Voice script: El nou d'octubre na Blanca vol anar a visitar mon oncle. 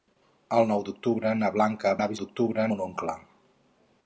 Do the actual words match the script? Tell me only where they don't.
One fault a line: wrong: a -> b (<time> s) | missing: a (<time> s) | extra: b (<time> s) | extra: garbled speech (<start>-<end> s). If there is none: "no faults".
missing: vol (1.9 s)
wrong: visitar -> d'octubre (2.2 s)